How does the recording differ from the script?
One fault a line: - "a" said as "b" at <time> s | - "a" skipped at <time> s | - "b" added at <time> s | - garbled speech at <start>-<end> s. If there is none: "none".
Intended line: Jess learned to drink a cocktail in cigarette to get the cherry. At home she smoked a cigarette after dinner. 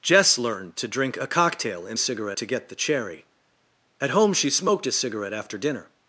none